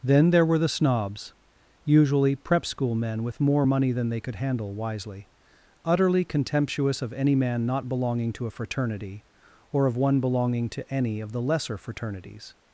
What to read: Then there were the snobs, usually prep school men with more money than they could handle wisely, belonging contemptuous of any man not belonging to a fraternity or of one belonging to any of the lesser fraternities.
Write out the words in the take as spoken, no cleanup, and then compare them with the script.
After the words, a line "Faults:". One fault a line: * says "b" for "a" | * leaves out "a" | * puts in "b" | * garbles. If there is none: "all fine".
Then there were the snobs, usually prep school men with more money than they could handle wisely, utterly contemptuous of any man not belonging to a fraternity or of one belonging to any of the lesser fraternities.
Faults:
* says "utterly" for "belonging"